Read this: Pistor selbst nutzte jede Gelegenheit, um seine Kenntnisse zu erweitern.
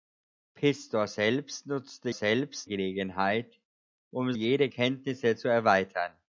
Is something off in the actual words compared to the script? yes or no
yes